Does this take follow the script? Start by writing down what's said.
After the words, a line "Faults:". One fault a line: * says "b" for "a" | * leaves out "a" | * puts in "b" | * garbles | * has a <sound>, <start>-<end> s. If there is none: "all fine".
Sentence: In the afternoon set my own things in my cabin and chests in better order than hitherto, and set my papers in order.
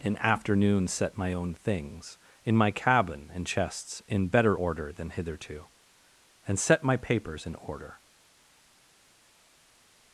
In afternoon set my own things in my cabin and chests in better order than hitherto, and set my papers in order.
Faults:
* leaves out "the"